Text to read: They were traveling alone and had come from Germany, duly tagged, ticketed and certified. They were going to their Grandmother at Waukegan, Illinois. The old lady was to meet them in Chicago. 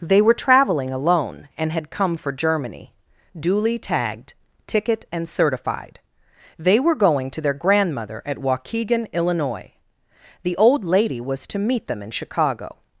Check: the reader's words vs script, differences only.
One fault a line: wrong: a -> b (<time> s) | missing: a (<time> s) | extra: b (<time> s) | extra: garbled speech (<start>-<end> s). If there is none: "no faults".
wrong: from -> for (2.2 s)
wrong: ticketed -> ticket (4.7 s)